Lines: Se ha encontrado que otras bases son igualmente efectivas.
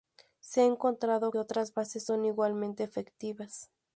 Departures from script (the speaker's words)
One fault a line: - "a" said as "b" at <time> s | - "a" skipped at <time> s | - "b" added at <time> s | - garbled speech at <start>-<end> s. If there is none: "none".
- "que" skipped at 1.3 s